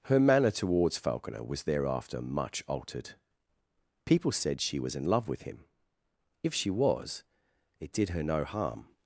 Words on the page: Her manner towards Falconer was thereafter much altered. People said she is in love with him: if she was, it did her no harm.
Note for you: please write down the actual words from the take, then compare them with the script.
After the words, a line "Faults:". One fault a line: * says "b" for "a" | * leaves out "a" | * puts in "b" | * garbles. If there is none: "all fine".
Her manner towards Falconer was thereafter much altered. People said she was in love with him: if she was, it did her no harm.
Faults:
* says "was" for "is"